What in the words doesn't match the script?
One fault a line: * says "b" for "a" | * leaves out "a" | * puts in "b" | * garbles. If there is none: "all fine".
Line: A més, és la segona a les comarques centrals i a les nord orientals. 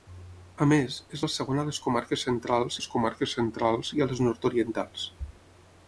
* puts in "les comarques centrals"